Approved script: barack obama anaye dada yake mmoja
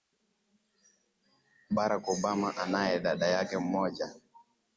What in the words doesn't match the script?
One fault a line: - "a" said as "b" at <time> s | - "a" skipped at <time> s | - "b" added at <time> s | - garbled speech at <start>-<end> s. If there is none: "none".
none